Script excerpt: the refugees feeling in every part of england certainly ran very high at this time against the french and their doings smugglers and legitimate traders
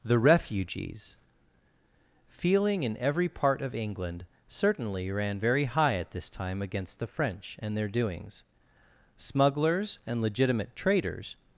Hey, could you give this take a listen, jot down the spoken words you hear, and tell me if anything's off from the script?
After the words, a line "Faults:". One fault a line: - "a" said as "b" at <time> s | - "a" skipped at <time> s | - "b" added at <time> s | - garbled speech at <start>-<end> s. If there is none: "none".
the refugees feeling in every part of england certainly ran very high at this time against the french and their doings smugglers and legitimate traders
Faults:
none